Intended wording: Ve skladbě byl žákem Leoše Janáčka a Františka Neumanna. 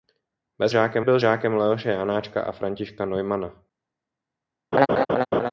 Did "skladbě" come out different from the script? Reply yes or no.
yes